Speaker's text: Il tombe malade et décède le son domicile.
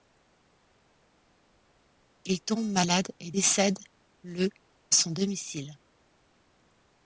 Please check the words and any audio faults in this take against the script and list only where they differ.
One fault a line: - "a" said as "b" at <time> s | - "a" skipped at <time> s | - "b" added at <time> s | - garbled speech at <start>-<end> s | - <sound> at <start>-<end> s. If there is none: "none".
none